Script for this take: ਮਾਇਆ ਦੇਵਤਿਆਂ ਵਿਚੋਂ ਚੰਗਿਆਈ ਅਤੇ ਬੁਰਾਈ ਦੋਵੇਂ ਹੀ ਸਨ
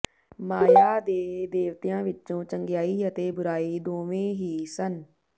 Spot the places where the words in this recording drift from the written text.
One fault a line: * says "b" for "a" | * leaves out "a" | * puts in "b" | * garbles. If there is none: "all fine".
* puts in "ਦੇ"